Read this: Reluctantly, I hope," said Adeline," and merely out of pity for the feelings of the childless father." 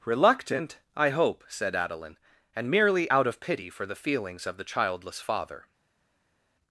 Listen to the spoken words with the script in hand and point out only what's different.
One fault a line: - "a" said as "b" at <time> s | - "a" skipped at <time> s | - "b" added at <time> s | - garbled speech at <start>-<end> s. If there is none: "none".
- "Reluctantly" said as "Reluctant" at 0.1 s